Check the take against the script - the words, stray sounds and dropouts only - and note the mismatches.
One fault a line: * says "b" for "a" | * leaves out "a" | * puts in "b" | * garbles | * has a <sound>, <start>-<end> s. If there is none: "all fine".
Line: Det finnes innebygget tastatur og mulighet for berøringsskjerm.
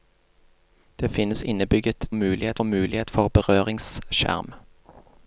* says "mulighet" for "tastatur"